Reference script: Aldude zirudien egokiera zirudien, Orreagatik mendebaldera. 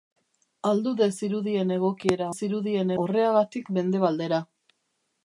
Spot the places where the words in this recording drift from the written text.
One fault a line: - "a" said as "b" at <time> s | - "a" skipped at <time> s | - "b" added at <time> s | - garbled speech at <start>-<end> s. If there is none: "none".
none